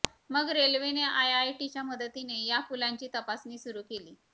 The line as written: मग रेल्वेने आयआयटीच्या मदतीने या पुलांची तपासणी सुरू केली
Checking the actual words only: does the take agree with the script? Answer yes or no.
yes